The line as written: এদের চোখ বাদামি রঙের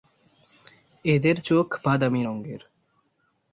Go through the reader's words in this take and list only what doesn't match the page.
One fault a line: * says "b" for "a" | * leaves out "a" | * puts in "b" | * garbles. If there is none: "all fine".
all fine